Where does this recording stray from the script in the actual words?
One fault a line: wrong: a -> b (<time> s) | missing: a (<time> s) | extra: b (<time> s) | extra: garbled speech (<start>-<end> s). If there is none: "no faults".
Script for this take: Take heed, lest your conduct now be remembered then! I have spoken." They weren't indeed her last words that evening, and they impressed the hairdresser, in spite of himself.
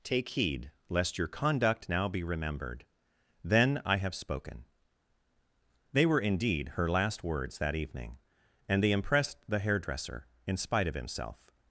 wrong: weren't -> were (6.1 s)